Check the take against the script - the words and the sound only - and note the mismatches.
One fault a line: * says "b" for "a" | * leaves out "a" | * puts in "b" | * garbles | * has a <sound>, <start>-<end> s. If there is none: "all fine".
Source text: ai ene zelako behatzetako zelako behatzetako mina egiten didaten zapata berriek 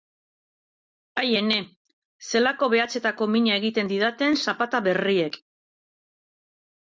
* leaves out "zelako behatzetako"